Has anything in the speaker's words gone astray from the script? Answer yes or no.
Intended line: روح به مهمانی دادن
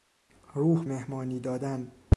yes